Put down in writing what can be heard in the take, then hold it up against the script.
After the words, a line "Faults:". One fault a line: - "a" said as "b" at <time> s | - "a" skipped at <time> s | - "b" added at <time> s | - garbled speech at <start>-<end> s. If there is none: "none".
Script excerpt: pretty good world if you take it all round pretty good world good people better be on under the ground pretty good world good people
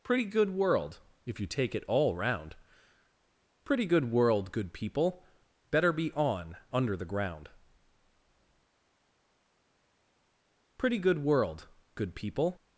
pretty good world if you take it all round pretty good world good people better be on under the ground pretty good world good people
Faults:
none